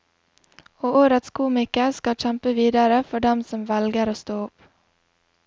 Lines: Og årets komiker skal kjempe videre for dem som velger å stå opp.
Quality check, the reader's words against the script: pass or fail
pass